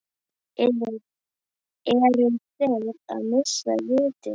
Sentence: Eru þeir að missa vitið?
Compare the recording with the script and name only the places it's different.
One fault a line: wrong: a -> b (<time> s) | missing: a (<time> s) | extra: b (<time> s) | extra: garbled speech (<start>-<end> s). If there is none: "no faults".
no faults